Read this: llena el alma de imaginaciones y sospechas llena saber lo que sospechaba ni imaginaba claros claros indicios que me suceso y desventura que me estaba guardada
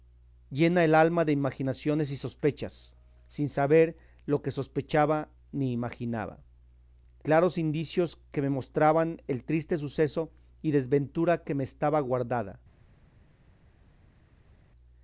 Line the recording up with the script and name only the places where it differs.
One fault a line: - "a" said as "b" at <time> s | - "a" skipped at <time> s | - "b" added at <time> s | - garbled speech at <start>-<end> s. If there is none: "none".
- "llena" said as "sin" at 3.3 s
- "claros" skipped at 7.6 s
- "mostraban el triste" added at 8.5 s